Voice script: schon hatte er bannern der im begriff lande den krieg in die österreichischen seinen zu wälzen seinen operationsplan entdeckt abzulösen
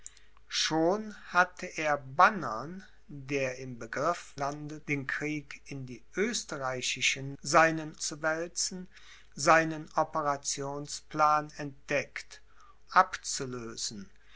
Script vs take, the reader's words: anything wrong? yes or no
no